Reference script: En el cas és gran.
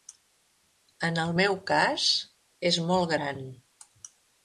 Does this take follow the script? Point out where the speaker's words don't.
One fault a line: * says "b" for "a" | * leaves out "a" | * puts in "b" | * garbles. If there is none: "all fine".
* puts in "meu"
* puts in "molt"